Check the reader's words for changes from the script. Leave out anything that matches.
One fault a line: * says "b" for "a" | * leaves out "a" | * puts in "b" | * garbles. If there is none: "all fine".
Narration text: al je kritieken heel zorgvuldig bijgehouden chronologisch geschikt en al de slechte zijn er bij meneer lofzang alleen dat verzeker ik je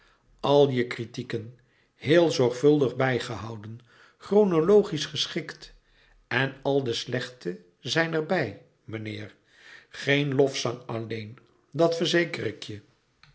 * puts in "geen"